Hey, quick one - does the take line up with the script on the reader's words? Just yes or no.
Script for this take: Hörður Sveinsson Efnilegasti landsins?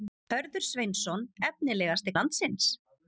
yes